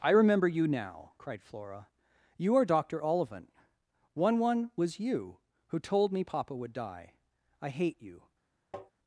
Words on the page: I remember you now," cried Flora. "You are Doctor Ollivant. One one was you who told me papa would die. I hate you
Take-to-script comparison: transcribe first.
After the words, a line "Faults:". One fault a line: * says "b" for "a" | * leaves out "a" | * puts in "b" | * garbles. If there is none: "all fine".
I remember you now," cried Flora. "You are Doctor Ollivant. One one was you who told me papa would die. I hate you
Faults:
all fine